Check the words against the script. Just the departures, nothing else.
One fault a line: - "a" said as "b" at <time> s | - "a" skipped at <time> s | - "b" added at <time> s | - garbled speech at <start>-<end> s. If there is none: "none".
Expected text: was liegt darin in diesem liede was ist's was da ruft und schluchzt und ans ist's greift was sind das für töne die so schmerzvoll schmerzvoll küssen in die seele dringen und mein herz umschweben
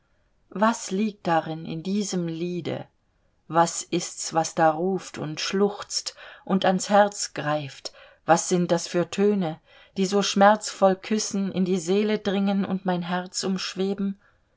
- "ist's" said as "herz" at 6.9 s
- "schmerzvoll" skipped at 10.9 s